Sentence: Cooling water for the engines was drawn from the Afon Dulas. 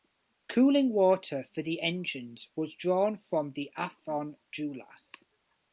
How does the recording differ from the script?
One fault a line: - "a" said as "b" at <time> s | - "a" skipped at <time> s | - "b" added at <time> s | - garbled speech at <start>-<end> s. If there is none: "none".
none